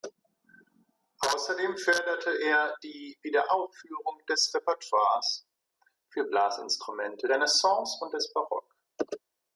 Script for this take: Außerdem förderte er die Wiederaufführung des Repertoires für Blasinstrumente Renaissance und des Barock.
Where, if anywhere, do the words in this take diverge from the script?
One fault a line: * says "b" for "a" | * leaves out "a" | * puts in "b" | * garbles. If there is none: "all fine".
all fine